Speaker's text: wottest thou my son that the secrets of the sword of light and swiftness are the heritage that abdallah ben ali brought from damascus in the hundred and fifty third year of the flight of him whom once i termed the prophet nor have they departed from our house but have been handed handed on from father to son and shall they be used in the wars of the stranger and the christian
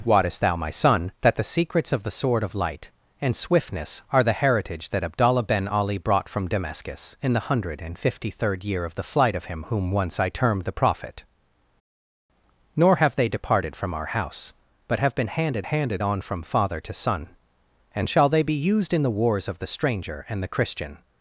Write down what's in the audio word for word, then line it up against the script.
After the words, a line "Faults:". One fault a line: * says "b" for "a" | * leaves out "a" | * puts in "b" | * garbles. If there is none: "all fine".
wottest thou my son that the secrets of the sword of light and swiftness are the heritage that abdallah ben ali brought from damascus in the hundred and fifty third year of the flight of him whom once i termed the prophet nor have they departed from our house but have been handed handed on from father to son and shall they be used in the wars of the stranger and the christian
Faults:
all fine